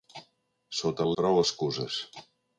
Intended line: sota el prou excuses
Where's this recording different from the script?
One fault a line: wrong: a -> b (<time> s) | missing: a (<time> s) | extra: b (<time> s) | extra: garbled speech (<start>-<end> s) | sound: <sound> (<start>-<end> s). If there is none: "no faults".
no faults